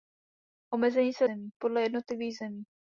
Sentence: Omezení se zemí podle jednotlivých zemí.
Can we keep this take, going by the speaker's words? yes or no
yes